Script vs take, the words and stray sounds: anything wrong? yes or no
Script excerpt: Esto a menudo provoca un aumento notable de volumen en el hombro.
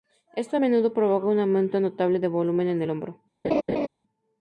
yes